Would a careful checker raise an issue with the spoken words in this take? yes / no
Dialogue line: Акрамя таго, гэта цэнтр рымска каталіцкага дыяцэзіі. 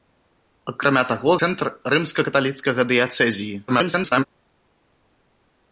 yes